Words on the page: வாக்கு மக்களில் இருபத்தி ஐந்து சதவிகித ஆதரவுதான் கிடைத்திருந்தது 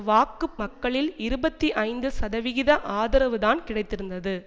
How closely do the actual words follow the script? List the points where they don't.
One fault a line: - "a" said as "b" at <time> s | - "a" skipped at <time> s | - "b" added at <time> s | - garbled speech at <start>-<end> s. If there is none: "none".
none